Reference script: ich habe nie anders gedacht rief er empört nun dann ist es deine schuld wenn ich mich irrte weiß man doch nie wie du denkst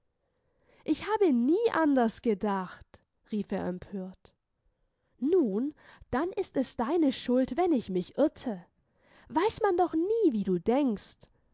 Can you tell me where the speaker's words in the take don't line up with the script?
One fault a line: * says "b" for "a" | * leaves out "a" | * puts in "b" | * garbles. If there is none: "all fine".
all fine